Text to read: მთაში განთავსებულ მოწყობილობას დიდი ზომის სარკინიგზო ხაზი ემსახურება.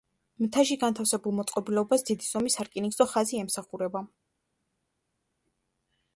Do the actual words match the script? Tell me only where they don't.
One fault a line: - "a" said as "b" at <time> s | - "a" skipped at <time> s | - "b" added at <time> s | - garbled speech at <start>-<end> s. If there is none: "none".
none